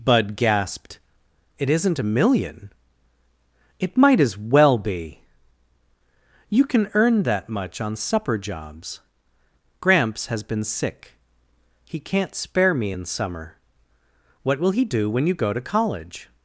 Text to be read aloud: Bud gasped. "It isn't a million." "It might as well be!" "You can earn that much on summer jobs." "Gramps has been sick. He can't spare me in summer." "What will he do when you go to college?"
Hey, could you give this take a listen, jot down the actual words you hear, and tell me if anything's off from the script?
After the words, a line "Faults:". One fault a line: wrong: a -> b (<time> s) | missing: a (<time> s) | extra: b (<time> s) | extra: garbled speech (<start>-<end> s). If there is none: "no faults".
Bud gasped. "It isn't a million." "It might as well be!" "You can earn that much on supper jobs." "Gramps has been sick. He can't spare me in summer." "What will he do when you go to college?"
Faults:
wrong: summer -> supper (7.9 s)